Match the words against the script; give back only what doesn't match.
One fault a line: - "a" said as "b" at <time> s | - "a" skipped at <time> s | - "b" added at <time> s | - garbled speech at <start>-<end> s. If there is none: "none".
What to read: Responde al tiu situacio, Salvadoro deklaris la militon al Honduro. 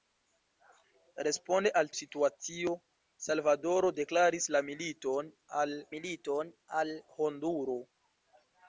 - "tiu" skipped at 1.9 s
- "militon al" added at 6.0 s